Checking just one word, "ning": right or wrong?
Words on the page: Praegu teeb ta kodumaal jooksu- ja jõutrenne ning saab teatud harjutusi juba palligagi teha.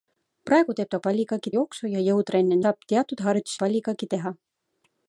wrong